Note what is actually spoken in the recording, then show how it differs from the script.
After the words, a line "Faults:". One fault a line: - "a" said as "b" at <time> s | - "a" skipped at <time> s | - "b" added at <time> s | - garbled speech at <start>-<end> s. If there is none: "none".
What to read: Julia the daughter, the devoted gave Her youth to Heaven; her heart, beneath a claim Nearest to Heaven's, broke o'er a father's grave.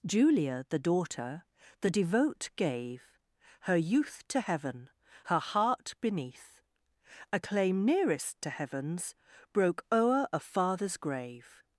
Julia the daughter, the devote gave Her youth to Heaven; her heart, beneath a claim Nearest to Heaven's, broke o'er a father's grave.
Faults:
- "devoted" said as "devote" at 1.9 s